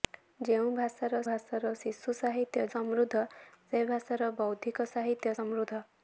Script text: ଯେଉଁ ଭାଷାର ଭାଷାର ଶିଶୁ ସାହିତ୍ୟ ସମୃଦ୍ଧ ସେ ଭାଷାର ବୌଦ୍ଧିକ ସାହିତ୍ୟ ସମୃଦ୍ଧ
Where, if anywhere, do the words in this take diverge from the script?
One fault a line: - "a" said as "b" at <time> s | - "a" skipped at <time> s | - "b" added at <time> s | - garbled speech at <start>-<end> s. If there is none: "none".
none